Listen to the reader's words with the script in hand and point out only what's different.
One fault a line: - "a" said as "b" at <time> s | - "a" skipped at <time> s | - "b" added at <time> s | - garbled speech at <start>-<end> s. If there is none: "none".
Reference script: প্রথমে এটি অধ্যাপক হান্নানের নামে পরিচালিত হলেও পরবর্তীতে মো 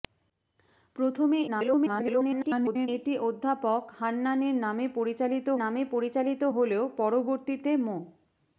- garbled speech at 1.5-2.9 s
- "নামে পরিচালিত" added at 5.5 s